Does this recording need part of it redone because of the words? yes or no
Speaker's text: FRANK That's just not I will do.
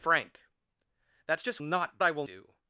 no